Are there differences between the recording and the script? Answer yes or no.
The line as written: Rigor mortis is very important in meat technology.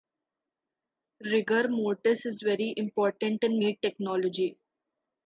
no